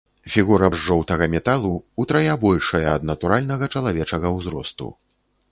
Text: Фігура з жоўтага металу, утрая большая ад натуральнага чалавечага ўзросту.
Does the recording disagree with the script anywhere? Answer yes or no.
no